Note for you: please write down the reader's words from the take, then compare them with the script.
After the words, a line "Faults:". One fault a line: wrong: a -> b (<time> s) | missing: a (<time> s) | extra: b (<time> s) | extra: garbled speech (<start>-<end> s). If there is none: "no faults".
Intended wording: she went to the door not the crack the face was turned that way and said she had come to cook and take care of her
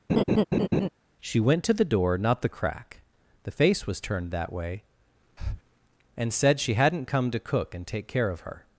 she went to the door not the crack the face was turned that way and said she hadn't come to cook and take care of her
Faults:
wrong: had -> hadn't (6.7 s)